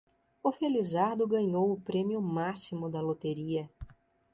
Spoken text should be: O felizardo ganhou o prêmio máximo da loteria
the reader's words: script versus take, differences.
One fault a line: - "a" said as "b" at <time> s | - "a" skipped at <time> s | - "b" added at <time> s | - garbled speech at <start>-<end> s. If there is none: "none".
none